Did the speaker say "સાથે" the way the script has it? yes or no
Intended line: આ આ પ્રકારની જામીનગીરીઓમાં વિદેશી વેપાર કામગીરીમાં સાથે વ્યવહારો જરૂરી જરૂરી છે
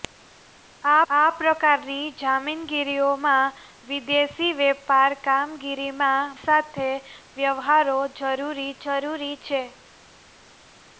yes